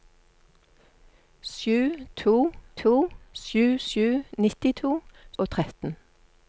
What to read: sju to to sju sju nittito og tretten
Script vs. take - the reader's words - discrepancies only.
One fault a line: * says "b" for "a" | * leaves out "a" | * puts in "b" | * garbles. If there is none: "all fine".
all fine